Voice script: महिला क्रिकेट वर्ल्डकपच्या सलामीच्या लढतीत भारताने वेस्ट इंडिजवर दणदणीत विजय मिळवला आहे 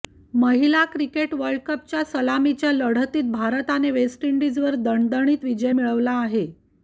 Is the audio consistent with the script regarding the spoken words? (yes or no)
yes